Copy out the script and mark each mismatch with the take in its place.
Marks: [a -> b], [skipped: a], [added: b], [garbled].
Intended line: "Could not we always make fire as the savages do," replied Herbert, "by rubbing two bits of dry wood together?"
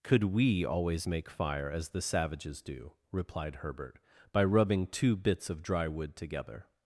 "Could [skipped: not] we always make fire as the savages do," replied Herbert, "by rubbing two bits of dry wood together?"